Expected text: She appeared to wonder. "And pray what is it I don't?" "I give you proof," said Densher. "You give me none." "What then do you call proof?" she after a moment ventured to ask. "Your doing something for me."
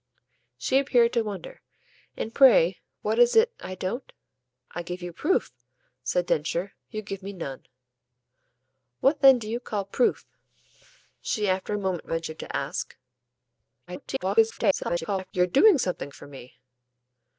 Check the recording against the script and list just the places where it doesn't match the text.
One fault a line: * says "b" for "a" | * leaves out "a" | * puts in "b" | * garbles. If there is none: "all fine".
* garbles